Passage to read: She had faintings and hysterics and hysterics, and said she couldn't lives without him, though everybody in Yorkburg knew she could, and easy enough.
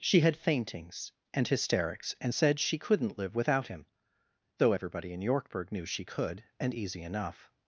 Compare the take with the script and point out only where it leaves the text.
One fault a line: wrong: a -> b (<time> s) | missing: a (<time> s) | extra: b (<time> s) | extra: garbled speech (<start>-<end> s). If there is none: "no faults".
missing: hysterics and (2.3 s)
wrong: lives -> live (3.2 s)